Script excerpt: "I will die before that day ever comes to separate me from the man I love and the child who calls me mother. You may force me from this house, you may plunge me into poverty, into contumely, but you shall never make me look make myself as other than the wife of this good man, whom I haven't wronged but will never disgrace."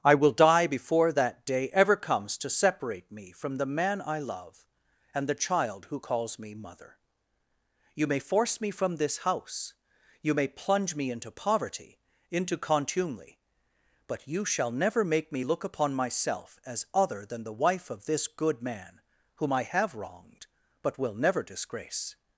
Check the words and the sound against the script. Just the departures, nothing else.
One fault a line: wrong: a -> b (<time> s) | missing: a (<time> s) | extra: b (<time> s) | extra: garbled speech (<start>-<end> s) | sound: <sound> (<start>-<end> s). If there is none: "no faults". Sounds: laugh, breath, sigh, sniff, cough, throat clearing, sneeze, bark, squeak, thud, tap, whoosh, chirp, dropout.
wrong: make -> upon (15.6 s)
wrong: haven't -> have (19.6 s)